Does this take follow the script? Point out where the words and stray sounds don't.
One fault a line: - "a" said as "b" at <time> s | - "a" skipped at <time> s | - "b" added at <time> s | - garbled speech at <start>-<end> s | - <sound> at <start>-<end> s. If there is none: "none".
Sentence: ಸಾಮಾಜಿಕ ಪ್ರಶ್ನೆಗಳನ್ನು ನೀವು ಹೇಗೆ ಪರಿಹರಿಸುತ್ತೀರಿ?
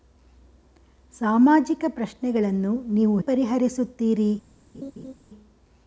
- "ಹೇಗೆ" skipped at 3.2 s
- laugh at 4.7-5.1 s